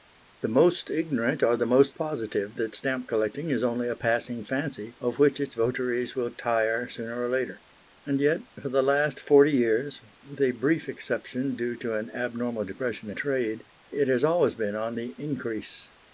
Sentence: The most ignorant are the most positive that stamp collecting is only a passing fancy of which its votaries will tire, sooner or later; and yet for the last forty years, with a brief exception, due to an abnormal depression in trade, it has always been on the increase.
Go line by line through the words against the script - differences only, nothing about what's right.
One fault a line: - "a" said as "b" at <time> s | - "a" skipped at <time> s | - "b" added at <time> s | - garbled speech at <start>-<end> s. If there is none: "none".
- "in" skipped at 13.1 s